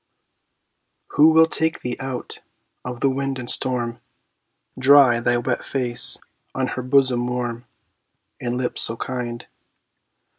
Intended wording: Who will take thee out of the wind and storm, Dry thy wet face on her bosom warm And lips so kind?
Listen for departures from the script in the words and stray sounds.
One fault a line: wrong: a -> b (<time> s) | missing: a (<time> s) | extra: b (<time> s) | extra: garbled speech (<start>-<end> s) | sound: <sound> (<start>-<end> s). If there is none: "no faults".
no faults